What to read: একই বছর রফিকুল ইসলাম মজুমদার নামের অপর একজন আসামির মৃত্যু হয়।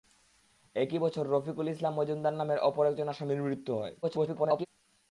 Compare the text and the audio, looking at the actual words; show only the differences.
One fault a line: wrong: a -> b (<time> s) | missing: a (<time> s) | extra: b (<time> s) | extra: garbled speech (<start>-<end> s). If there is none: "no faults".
extra: garbled speech (4.0-4.7 s)